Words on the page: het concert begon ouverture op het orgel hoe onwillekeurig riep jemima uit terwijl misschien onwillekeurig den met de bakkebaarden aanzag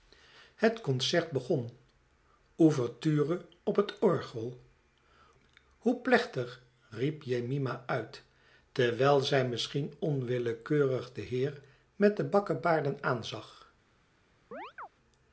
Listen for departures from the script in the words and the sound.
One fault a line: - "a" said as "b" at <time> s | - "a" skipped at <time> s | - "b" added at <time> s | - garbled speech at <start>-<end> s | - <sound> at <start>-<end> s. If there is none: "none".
- "onwillekeurig" said as "plechtig" at 6.0 s
- "zij" added at 9.2 s
- "heer" added at 11.2 s
- chirp at 14.5-14.9 s